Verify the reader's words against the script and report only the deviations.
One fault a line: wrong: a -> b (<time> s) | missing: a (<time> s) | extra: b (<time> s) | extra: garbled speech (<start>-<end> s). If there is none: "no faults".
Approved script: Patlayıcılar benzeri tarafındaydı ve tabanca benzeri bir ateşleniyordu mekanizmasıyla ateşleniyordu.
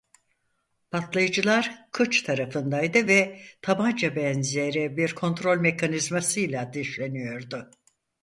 wrong: benzeri -> kıç (1.9 s)
wrong: ateşleniyordu -> kontrol (5.1 s)